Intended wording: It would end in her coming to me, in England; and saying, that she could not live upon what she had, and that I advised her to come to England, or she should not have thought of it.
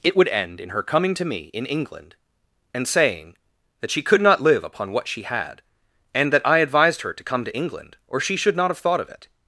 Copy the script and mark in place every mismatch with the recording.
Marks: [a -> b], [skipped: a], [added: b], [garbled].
It would end in her coming to me, in England; and saying, that she could not live upon what she had, and that I advised her to come to England, or she should not have thought of it.